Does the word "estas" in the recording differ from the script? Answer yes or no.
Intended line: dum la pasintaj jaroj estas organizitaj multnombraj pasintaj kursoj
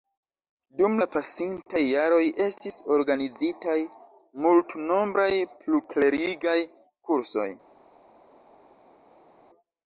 yes